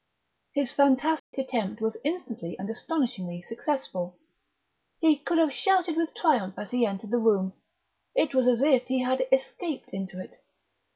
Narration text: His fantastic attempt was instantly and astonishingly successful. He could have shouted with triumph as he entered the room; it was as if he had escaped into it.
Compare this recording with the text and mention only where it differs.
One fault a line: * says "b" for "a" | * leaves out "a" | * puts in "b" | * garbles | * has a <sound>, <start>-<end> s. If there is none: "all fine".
* has a dropout, 1.2-1.3 s